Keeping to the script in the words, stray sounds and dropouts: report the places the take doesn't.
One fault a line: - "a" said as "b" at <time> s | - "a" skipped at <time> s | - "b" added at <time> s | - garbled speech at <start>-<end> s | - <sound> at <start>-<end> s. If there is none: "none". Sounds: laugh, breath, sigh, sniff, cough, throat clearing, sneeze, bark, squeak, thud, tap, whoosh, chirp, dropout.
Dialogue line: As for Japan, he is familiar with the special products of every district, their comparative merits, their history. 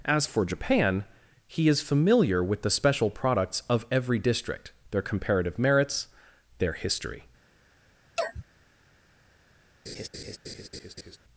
- sneeze at 8.2-8.4 s
- laugh at 9.9-11.2 s